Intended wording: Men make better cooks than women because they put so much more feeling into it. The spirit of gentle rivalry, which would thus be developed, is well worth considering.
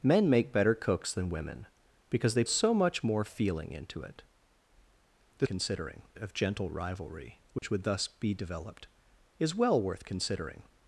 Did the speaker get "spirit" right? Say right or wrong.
wrong